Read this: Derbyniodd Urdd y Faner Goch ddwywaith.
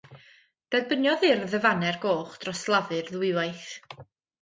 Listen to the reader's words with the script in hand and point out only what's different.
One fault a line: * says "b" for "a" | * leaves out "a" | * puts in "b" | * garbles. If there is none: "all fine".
* puts in "dros Lafur"